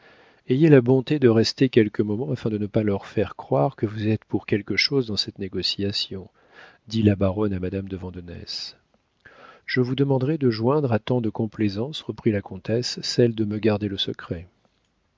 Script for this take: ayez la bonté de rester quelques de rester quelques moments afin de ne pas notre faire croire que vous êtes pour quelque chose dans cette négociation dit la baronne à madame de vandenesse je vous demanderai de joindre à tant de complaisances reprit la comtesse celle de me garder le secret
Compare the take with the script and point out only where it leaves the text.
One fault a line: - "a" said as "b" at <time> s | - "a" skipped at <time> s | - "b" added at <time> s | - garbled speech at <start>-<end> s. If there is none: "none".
- "de rester quelques" skipped at 2.0 s
- "notre" said as "leur" at 2.8 s